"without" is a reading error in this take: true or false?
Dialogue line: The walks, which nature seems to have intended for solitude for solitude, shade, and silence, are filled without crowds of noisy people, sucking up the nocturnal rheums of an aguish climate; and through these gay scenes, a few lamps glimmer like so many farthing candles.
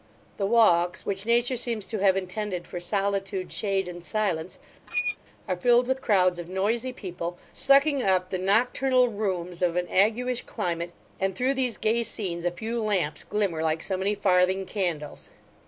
true